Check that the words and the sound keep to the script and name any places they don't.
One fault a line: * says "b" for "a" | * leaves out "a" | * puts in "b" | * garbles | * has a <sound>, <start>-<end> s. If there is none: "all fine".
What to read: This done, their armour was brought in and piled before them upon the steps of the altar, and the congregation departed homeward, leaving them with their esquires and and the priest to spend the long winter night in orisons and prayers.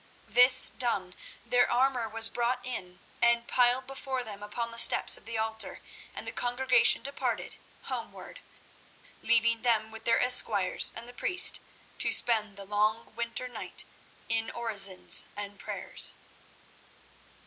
* leaves out "and"